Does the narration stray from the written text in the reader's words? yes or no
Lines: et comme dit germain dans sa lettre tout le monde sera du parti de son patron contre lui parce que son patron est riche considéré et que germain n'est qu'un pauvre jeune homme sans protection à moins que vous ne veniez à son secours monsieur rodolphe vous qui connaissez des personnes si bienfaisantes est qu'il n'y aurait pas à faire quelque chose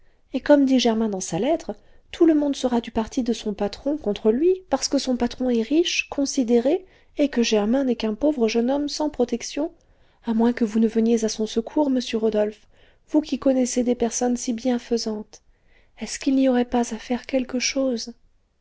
yes